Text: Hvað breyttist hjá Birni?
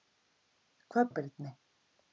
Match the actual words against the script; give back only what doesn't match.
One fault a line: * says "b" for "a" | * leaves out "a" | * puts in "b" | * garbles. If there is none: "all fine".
* leaves out "breyttist"